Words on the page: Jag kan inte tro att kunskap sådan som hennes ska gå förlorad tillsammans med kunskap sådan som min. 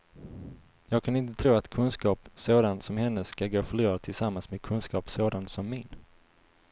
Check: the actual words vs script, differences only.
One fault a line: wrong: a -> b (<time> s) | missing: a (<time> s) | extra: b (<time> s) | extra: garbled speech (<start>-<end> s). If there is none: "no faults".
no faults